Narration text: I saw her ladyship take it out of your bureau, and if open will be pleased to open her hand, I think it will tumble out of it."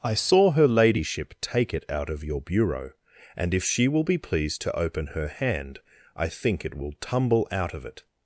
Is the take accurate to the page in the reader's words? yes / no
no